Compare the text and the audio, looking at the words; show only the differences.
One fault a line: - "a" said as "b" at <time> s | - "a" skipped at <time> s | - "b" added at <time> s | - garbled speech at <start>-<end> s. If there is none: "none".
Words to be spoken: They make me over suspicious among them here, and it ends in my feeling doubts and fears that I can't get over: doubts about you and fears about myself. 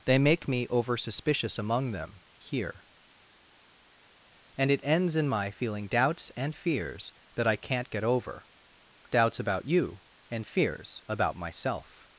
none